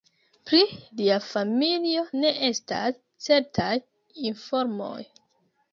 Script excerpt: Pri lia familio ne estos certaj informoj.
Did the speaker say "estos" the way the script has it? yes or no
no